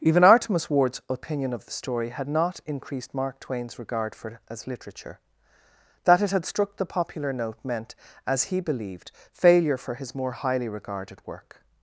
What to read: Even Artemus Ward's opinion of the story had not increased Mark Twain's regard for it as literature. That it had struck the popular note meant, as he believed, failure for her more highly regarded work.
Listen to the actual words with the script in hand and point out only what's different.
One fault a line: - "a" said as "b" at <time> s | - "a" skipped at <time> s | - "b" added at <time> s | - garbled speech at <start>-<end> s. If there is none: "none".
- "her" said as "his" at 9.9 s